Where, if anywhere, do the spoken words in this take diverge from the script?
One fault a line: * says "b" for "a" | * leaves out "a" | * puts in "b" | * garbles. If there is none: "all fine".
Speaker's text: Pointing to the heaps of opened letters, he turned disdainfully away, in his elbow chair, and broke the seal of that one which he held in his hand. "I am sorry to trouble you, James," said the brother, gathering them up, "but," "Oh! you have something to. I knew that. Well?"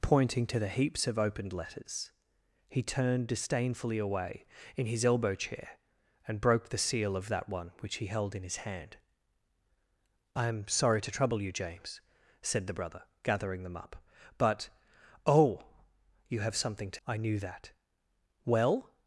all fine